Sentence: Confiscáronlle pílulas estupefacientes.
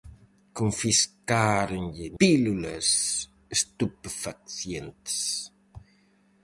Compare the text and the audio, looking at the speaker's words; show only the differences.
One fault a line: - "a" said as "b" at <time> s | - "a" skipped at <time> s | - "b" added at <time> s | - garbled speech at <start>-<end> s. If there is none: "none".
none